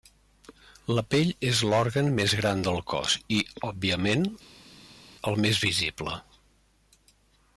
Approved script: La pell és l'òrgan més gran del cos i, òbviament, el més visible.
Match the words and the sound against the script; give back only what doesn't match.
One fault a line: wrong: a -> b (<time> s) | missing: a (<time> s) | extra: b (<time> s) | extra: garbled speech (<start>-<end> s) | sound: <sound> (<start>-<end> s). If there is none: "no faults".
no faults